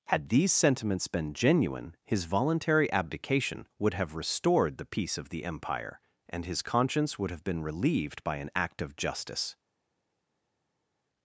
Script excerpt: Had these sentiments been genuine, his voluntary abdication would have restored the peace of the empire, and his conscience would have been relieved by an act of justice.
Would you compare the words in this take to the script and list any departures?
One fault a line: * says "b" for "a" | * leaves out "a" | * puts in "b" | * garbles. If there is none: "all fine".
all fine